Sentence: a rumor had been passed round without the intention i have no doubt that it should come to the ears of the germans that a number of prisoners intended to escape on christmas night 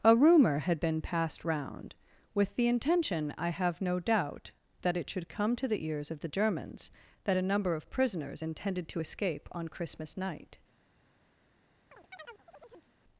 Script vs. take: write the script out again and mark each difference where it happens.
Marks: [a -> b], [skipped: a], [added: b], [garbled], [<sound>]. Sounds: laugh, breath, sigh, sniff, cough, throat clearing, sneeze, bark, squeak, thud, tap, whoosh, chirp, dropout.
a rumor had been passed round [without -> with] the intention i have no doubt that it should come to the ears of the germans that a number of prisoners intended to escape on christmas night [chirp]